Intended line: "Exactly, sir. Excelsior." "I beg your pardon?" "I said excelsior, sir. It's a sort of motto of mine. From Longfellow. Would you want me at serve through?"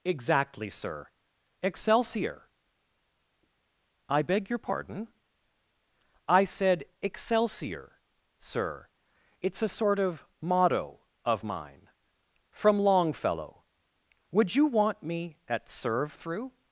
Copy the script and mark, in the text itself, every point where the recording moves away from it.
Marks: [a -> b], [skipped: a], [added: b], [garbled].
"Exactly, sir. Excelsior." "I beg your pardon?" "I said excelsior, sir. It's a sort of motto of mine. From Longfellow. Would you want me at serve through?"